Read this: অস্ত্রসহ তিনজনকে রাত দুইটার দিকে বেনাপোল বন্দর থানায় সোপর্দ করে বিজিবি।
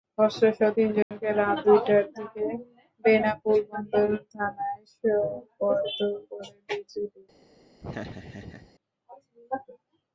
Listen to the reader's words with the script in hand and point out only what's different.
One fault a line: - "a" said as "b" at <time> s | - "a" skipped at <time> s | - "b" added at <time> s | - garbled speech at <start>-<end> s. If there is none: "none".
none